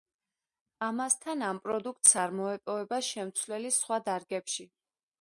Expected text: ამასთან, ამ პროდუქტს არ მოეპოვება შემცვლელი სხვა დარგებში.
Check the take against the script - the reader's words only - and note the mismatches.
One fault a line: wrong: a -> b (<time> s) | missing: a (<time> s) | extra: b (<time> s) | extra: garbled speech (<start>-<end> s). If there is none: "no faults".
no faults